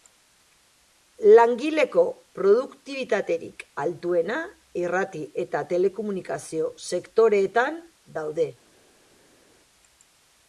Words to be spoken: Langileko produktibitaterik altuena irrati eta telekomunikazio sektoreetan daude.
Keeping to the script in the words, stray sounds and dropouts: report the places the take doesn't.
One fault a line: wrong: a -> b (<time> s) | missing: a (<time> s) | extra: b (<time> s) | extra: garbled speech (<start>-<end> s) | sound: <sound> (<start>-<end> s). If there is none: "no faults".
no faults